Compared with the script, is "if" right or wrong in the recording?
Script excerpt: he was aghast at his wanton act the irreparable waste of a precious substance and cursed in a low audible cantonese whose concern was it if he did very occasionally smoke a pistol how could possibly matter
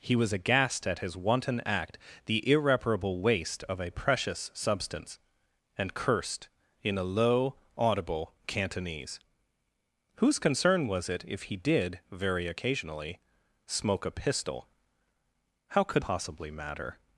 right